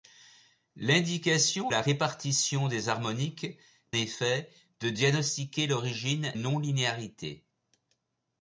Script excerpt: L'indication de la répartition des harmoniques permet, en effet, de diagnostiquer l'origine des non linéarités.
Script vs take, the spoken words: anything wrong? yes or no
yes